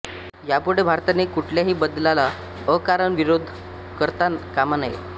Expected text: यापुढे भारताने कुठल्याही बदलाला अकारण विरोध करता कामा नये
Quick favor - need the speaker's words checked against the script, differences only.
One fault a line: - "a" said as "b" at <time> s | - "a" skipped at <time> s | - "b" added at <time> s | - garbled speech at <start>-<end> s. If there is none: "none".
none